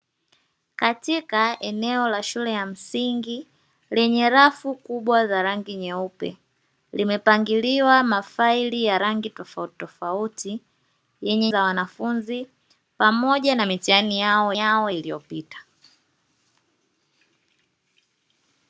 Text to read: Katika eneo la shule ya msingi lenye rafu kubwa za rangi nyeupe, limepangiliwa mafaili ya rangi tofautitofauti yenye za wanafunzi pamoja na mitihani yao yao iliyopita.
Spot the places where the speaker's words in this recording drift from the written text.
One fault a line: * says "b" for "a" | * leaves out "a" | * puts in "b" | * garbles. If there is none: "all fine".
all fine